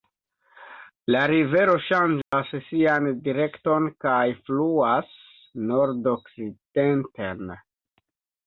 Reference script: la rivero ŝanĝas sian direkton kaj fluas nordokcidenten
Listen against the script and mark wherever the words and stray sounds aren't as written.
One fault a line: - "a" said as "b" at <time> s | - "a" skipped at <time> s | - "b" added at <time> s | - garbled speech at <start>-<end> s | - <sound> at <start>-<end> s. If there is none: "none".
- dropout at 2.2-2.3 s